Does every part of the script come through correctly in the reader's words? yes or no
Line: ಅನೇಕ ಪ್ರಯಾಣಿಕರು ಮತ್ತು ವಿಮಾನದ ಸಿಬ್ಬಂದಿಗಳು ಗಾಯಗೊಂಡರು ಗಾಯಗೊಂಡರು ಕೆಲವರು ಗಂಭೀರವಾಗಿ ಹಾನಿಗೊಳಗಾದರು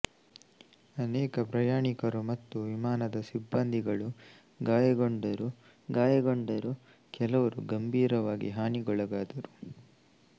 yes